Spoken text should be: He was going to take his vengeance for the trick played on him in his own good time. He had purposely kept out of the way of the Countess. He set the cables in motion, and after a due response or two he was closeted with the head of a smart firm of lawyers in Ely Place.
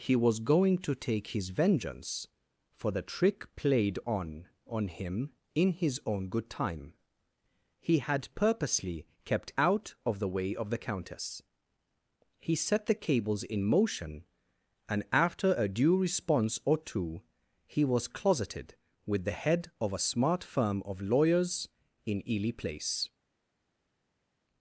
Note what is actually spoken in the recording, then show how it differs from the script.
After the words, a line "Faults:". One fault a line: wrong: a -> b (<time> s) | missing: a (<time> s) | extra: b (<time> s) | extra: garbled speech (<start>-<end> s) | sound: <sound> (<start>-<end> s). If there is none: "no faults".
He was going to take his vengeance for the trick played on on him in his own good time. He had purposely kept out of the way of the Countess. He set the cables in motion, and after a due response or two he was closeted with the head of a smart firm of lawyers in Ely Place.
Faults:
extra: on (4.7 s)